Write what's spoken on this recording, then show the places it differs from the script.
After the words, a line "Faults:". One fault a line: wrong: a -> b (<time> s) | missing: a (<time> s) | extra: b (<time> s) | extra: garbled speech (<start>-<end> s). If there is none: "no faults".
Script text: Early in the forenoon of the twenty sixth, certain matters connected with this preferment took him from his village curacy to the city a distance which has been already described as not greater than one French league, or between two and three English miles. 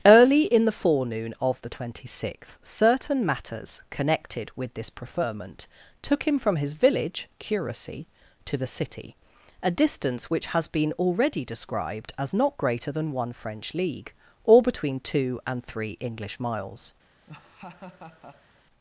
Early in the forenoon of the twenty sixth, certain matters connected with this preferment took him from his village curacy to the city a distance which has been already described as not greater than one French league, or between two and three English miles.
Faults:
no faults